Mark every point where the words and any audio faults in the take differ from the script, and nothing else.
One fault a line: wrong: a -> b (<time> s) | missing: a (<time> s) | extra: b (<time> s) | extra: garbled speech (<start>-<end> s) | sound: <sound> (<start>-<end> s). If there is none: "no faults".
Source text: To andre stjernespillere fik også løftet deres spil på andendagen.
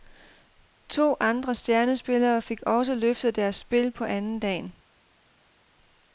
no faults